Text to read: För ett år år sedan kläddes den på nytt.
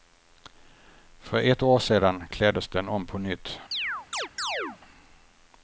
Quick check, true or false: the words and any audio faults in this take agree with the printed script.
false